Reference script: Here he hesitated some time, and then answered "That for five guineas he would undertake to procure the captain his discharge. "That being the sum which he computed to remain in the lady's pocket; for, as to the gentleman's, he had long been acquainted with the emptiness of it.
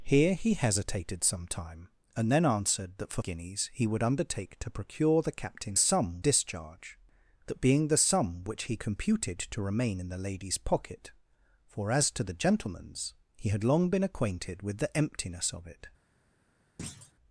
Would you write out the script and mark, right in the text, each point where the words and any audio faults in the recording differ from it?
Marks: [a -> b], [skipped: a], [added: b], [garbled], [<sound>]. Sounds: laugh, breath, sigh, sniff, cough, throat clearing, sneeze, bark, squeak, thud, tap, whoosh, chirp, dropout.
Here he hesitated some time, and then answered "That for [skipped: five] guineas he would undertake to procure the captain [his -> sum] discharge. "That being the sum which he computed to remain in the lady's pocket; for, as to the gentleman's, he had long been acquainted with the emptiness of it. [thud]